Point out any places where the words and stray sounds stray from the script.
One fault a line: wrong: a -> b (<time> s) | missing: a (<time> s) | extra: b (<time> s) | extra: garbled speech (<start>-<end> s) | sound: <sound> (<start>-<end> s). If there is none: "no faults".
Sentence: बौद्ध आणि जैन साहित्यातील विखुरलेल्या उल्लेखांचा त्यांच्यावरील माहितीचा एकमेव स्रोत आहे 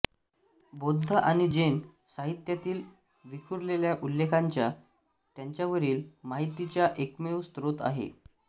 no faults